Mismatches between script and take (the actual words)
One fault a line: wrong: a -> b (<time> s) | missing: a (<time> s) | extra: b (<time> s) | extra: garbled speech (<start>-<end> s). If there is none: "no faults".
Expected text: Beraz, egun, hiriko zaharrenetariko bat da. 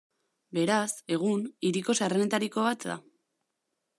no faults